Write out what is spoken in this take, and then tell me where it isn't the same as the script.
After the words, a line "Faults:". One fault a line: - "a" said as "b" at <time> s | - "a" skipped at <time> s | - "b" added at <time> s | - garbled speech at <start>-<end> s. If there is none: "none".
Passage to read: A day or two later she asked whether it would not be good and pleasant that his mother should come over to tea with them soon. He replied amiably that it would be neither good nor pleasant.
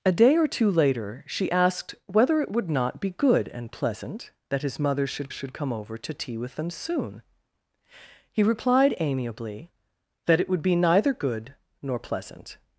A day or two later she asked whether it would not be good and pleasant that his mother should should come over to tea with them soon. He replied amiably that it would be neither good nor pleasant.
Faults:
- "should" added at 5.3 s